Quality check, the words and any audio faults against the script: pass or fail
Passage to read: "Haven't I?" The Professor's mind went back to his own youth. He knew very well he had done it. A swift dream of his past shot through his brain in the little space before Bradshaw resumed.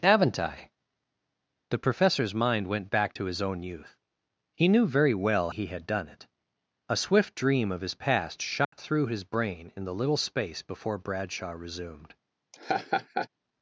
fail